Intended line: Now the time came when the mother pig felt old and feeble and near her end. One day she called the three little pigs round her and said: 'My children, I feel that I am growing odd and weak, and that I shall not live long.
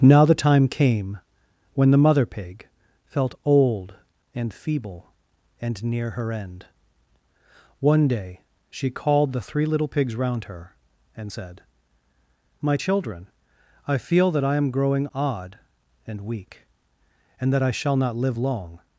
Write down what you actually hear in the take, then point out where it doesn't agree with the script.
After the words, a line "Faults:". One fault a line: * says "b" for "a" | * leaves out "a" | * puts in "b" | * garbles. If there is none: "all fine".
Now the time came when the mother pig felt old and feeble and near her end. One day she called the three little pigs round her and said: 'My children, I feel that I am growing odd and weak, and that I shall not live long.
Faults:
all fine